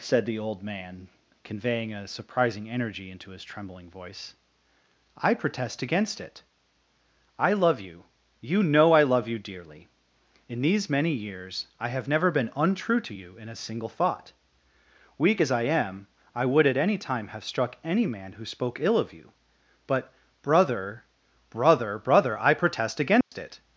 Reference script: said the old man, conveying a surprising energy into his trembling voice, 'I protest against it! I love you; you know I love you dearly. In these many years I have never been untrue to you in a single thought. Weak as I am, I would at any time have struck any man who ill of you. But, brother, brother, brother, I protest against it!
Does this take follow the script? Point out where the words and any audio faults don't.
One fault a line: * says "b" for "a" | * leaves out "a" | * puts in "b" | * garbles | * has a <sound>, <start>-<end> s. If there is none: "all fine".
* puts in "spoke"
* has a dropout, 23.2-23.3 s